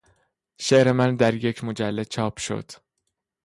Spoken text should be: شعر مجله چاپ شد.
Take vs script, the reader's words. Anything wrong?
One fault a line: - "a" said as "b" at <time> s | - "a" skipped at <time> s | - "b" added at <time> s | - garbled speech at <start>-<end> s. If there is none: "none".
- "من در یک" added at 0.9 s